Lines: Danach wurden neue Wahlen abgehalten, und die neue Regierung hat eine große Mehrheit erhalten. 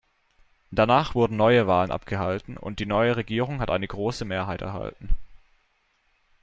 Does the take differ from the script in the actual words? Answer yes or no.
no